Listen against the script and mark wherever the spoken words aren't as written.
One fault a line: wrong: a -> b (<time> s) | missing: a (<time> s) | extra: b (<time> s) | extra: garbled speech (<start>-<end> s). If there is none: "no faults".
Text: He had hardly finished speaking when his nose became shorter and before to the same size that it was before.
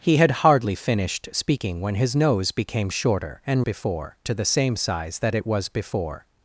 no faults